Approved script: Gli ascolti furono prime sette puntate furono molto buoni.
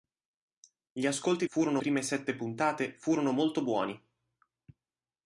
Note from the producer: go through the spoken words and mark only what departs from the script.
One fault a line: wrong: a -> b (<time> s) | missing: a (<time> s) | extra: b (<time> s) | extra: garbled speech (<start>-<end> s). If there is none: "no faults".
no faults